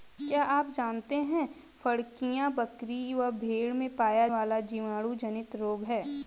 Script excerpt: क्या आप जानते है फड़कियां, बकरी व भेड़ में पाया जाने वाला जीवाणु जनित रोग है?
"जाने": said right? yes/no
no